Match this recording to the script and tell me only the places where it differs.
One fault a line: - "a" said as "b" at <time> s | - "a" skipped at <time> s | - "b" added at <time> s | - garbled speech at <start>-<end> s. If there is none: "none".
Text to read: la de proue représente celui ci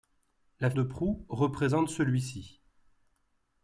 none